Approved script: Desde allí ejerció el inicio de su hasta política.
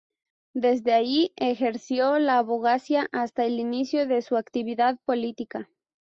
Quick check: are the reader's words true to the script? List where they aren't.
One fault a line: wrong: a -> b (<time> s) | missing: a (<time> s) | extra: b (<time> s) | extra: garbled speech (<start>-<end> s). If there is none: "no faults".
extra: la abogacía hasta (2.2 s)
wrong: hasta -> actividad (4.3 s)